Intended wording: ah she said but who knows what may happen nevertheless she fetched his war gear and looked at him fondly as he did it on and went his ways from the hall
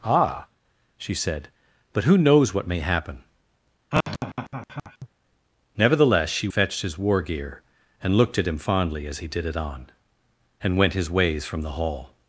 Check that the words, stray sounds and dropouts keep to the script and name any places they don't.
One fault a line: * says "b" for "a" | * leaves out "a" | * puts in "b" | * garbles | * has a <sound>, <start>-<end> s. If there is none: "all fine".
* has a laugh, 3.9-5.1 s